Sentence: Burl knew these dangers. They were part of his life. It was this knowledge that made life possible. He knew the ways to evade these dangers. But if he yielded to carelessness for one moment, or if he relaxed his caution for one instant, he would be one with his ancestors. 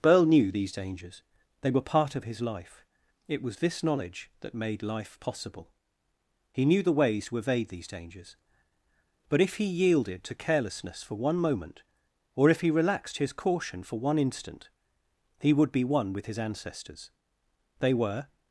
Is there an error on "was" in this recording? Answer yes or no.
no